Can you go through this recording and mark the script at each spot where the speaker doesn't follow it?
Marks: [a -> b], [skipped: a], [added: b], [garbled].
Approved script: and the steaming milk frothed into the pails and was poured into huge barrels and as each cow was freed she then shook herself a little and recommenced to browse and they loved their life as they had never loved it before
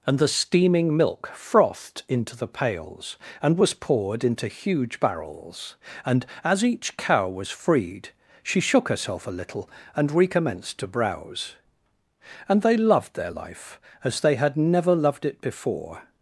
and the steaming milk frothed into the pails and was poured into huge barrels and as each cow was freed she [skipped: then] shook herself a little and recommenced to browse and they loved their life as they had never loved it before